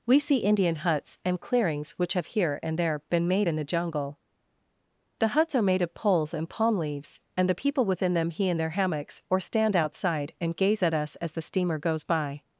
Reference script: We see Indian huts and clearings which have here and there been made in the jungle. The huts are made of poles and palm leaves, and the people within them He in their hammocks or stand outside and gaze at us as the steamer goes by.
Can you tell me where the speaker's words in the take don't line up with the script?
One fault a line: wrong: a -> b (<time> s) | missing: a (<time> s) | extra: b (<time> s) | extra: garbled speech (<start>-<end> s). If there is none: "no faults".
no faults